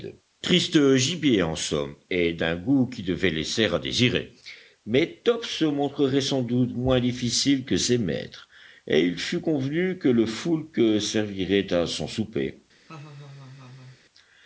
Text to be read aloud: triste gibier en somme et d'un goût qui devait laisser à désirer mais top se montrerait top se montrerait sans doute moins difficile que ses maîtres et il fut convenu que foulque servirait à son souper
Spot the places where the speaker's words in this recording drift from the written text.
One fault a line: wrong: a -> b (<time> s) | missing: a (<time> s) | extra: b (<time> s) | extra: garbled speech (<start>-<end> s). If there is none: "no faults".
missing: top se montrerait (6.2 s)
extra: le (10.1 s)